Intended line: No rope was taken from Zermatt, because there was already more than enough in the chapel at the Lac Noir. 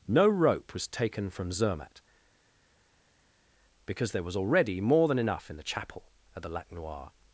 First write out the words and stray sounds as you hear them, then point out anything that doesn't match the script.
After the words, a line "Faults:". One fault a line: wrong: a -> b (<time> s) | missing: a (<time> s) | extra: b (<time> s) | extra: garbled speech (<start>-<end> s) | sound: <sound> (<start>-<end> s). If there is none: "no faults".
No rope was taken from Zermatt, because there was already more than enough in the chapel at the Lac Noir.
Faults:
no faults